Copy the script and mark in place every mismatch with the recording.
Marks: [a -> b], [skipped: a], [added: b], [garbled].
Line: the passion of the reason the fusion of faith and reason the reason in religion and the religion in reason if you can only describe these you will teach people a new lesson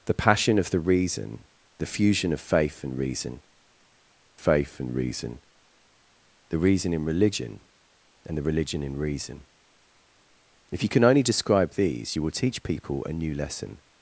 the passion of the reason the fusion of faith and reason [added: faith and reason] the reason in religion and the religion in reason if you can only describe these you will teach people a new lesson